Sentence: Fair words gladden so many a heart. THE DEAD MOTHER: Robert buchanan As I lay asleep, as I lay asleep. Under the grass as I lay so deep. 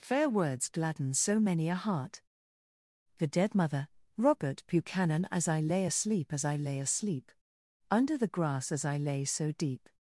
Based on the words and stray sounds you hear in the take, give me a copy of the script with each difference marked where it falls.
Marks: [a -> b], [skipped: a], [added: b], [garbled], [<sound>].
Fair words gladden so many a heart. THE DEAD MOTHER: Robert buchanan As I lay asleep, as I lay asleep. Under the grass as I lay so deep.